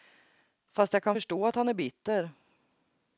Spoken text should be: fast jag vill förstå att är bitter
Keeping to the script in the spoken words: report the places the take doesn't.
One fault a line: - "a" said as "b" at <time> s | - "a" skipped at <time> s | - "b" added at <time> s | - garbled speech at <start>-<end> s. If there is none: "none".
- "vill" said as "kan" at 1.0 s
- "han" added at 1.5 s